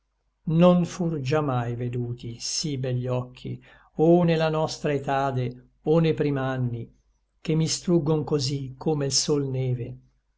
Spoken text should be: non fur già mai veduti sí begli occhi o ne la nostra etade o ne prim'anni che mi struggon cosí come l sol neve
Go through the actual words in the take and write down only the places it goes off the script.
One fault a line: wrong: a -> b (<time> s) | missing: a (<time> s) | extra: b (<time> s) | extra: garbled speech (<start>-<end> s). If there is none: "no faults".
no faults